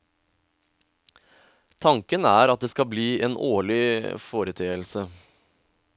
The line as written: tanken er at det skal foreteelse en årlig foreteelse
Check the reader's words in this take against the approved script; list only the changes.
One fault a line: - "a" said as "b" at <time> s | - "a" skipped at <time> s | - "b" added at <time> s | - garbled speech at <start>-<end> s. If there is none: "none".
- "foreteelse" said as "bli" at 2.9 s